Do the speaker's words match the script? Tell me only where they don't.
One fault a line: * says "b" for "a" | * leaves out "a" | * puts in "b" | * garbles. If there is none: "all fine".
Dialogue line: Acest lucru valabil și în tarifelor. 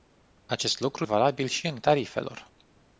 all fine